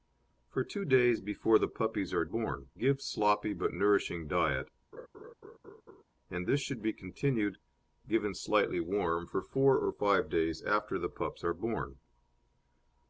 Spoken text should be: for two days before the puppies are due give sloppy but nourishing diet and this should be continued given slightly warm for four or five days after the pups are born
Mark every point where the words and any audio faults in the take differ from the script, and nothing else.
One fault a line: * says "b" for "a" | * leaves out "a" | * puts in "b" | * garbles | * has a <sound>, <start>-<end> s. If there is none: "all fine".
* says "born" for "due"
* has a laugh, 4.9-6.0 s